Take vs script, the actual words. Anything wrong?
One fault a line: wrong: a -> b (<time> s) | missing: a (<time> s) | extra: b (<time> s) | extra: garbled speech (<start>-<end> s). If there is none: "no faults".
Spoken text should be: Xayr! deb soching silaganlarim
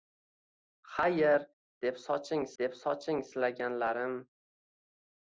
extra: deb soching (2.6 s)